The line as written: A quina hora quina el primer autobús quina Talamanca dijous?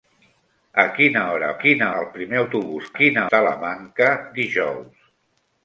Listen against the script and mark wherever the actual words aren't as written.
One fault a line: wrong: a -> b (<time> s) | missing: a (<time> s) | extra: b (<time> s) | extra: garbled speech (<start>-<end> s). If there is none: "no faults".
no faults